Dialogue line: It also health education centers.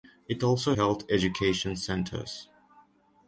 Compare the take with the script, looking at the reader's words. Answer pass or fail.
pass